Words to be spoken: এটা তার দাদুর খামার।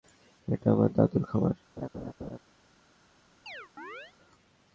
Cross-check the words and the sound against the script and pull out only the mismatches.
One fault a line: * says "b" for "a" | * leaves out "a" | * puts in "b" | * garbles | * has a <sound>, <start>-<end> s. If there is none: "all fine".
* says "আমার" for "তার"
* has a laugh, 1.8-2.4 s
* has a chirp, 3.5-4.1 s